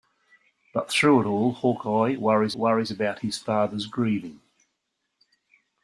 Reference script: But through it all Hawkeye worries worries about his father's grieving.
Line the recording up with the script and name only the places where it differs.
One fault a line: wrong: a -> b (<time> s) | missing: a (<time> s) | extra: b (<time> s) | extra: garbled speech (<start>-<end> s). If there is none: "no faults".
no faults